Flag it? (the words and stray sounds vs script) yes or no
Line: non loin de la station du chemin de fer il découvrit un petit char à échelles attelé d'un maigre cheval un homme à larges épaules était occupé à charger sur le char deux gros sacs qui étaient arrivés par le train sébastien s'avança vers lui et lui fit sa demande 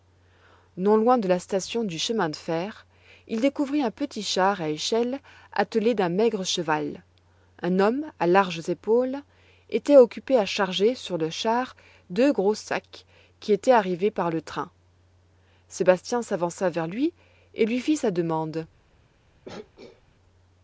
yes